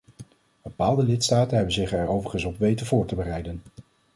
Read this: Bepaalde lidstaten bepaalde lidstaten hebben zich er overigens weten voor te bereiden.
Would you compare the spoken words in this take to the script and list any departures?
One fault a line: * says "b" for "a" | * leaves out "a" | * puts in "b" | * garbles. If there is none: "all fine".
* leaves out "bepaalde lidstaten"
* puts in "op"